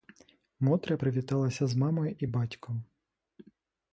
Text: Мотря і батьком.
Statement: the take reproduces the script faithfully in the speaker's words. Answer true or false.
false